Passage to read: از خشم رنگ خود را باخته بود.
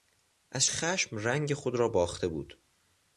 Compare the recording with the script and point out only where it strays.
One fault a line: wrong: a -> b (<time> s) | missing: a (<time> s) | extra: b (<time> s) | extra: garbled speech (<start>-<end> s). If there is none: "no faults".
no faults